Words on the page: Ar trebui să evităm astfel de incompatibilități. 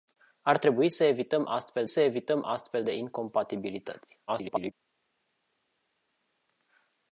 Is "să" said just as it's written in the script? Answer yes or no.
yes